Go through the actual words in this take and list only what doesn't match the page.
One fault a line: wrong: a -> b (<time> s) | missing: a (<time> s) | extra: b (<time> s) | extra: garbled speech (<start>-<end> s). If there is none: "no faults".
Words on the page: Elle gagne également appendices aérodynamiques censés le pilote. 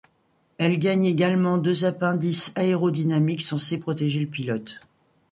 extra: deux (1.6 s)
extra: protéger (3.8 s)